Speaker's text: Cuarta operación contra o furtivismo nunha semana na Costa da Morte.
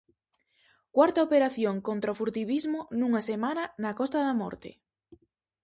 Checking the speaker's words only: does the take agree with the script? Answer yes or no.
yes